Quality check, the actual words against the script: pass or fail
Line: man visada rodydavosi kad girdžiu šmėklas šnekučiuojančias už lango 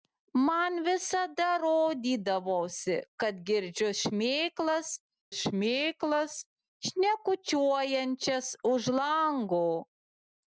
fail